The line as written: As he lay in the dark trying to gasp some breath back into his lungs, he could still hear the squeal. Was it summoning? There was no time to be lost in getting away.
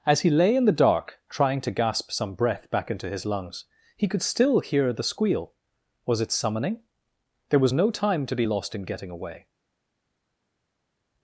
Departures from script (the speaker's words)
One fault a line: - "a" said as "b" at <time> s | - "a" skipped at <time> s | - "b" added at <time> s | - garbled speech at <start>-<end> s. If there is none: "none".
none